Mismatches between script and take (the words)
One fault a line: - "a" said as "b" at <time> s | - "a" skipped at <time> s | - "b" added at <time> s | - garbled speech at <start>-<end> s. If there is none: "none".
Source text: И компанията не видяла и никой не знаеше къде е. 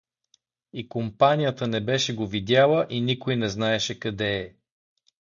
- "беше го" added at 1.8 s